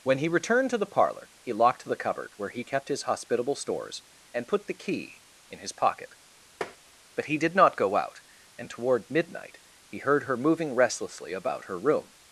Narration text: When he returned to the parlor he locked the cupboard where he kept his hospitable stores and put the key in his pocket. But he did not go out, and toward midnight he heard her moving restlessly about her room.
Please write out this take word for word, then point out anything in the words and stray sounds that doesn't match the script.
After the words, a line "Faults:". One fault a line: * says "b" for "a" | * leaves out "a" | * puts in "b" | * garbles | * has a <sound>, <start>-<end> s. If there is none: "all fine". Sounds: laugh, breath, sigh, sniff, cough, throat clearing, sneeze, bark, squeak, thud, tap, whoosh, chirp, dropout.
When he returned to the parlor he locked the cupboard where he kept his hospitable stores and put the key in his pocket. But he did not go out, and toward midnight he heard her moving restlessly about her room.
Faults:
* has a tap, 6.6-6.8 s